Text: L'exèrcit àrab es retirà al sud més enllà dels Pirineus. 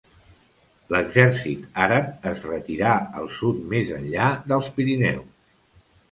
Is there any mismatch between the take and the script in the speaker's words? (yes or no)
no